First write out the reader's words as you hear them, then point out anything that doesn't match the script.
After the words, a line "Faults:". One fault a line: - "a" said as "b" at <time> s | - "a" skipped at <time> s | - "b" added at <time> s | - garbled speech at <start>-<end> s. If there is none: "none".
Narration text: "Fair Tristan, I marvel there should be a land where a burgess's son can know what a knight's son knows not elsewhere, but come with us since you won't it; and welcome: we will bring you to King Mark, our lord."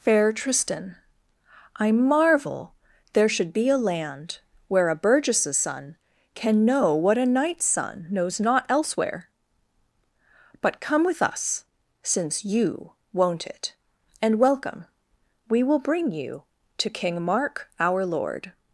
"Fair Tristan, I marvel there should be a land where a burgess's son can know what a knight's son knows not elsewhere, but come with us since you won't it; and welcome: we will bring you to King Mark, our lord."
Faults:
none